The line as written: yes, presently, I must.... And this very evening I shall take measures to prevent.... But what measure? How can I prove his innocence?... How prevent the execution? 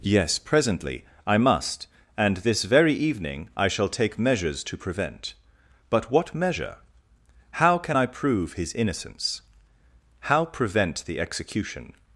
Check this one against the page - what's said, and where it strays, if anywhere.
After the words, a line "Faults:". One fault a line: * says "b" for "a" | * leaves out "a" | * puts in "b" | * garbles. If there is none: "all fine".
yes, presently, I must.... And this very evening I shall take measures to prevent.... But what measure? How can I prove his innocence?... How prevent the execution?
Faults:
all fine